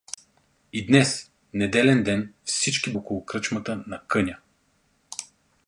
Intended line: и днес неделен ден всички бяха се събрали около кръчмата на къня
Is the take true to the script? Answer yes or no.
no